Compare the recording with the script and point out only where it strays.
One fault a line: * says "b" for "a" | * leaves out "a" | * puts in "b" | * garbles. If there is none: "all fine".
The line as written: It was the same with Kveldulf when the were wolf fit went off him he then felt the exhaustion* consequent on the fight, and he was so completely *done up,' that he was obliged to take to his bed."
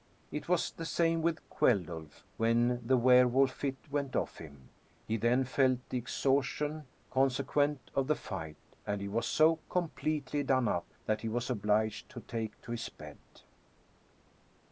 all fine